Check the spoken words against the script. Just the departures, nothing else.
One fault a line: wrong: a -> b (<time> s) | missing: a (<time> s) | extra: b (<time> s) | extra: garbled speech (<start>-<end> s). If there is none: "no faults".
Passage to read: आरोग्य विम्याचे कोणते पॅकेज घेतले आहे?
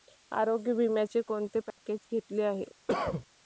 no faults